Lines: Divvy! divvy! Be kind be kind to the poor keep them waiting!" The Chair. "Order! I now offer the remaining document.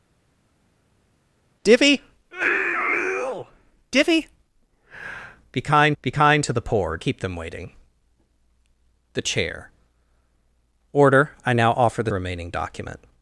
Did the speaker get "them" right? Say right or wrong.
right